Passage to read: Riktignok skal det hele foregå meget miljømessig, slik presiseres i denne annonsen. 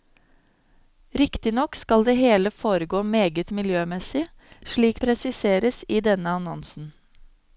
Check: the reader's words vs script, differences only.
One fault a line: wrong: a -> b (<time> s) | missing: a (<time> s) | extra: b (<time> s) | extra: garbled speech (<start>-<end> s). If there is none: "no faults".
no faults